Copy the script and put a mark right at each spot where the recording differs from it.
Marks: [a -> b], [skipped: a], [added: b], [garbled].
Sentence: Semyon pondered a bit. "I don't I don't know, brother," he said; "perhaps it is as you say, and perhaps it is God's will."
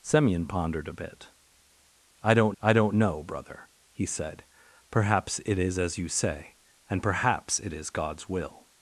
Semyon pondered a bit. "I don't I don't know, brother," he said; "perhaps it is as you say, and perhaps it is God's will."